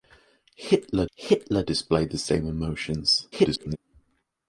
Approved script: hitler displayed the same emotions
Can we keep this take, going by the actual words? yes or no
no